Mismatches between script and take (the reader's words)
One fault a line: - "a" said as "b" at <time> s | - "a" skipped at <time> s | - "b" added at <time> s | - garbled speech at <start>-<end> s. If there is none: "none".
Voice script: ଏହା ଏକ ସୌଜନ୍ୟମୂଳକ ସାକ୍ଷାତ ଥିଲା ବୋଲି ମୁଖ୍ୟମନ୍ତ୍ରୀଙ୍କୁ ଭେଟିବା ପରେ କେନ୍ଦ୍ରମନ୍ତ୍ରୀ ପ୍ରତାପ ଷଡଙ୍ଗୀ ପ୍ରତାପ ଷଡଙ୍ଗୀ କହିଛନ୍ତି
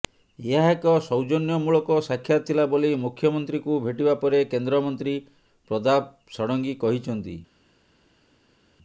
- "ପ୍ରତାପ ଷଡଙ୍ଗୀ" skipped at 6.8 s